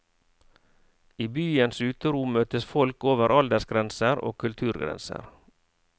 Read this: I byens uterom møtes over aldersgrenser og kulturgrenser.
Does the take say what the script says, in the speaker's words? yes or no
no